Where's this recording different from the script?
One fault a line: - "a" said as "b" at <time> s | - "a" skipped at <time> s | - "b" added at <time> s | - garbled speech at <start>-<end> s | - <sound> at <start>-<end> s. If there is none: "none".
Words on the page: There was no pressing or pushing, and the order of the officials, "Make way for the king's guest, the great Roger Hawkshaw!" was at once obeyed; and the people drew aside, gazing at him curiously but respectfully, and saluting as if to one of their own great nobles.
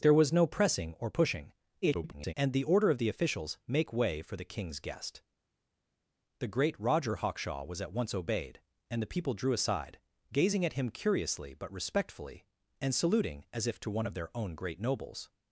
- garbled speech at 1.8-2.3 s